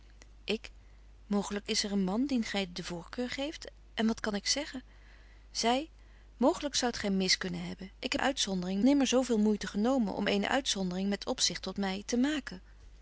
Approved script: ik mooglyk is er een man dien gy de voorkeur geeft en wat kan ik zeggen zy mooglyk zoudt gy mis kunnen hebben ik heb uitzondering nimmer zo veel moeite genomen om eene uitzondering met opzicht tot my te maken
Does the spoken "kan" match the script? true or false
true